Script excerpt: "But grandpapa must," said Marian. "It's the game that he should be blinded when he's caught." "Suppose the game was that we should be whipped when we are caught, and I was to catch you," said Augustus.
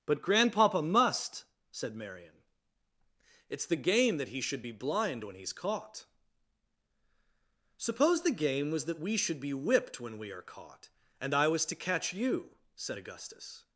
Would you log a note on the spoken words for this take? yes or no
yes